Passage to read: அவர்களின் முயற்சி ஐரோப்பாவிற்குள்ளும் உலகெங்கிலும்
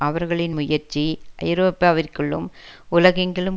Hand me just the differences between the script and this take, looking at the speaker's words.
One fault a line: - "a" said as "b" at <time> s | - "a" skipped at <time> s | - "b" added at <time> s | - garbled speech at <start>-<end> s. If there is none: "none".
none